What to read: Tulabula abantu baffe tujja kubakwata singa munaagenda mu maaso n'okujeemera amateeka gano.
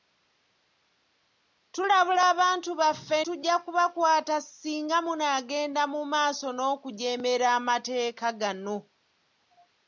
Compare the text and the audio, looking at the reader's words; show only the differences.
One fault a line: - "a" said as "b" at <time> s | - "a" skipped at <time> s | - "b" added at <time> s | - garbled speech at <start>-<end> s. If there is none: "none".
none